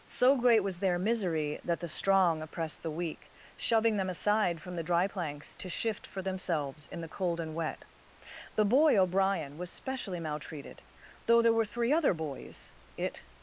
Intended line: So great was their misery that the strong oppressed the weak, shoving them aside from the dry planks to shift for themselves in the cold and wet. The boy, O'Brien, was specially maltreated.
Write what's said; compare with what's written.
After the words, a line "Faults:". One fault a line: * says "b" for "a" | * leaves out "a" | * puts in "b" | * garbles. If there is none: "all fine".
So great was their misery that the strong oppressed the weak, shoving them aside from the dry planks to shift for themselves in the cold and wet. The boy, O'Brien, was specially maltreated. Though there were three other boys, it
Faults:
* puts in "Though there were three other boys it"